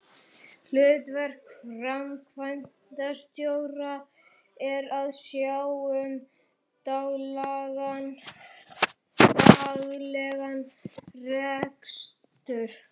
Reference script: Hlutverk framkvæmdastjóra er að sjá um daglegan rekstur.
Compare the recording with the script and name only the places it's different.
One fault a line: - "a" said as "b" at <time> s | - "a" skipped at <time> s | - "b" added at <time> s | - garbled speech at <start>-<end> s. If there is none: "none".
none